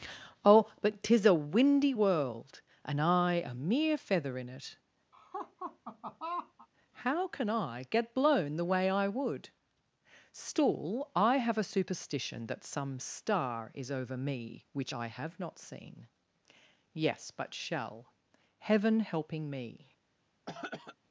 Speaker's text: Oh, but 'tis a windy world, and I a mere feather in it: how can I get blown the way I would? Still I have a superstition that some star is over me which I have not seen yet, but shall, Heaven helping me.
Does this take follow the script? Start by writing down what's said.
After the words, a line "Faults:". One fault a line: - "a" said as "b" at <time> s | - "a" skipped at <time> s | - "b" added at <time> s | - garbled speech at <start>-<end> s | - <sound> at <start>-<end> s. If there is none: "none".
Oh, but 'tis a windy world, and I a mere feather in it: how can I get blown the way I would? Still I have a superstition that some star is over me which I have not seen yes, but shall, Heaven helping me.
Faults:
- laugh at 5.1-6.7 s
- "yet" said as "yes" at 16.9 s
- throat clearing at 20.5-21.0 s